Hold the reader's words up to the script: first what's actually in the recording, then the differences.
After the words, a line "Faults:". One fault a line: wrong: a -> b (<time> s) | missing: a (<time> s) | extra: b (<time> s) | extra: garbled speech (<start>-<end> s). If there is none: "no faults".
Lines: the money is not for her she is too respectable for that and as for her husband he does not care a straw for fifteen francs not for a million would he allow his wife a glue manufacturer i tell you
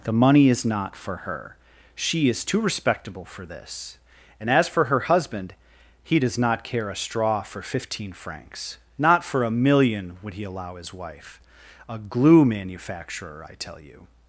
the money is not for her she is too respectable for this and as for her husband he does not care a straw for fifteen francs not for a million would he allow his wife a glue manufacturer i tell you
Faults:
wrong: that -> this (3.5 s)